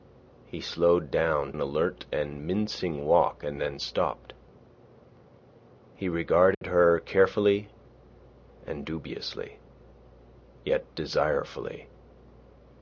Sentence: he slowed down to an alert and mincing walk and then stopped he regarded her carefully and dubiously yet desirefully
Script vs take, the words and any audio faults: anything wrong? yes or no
yes